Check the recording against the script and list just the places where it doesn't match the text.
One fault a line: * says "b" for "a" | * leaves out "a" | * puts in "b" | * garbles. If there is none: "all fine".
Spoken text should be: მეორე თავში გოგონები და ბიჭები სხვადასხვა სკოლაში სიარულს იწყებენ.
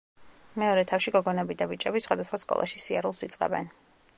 all fine